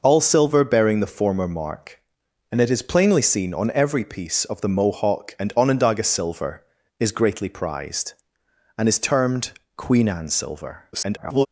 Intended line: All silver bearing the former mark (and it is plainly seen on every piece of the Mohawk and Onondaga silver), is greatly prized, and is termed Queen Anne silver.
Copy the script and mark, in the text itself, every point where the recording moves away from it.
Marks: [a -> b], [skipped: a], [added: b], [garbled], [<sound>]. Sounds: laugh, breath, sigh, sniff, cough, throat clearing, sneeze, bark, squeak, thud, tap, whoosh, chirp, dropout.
All silver bearing the former mark (and it is plainly seen on every piece of the Mohawk and Onondaga silver), is greatly prized, and is termed Queen Anne silver. [garbled]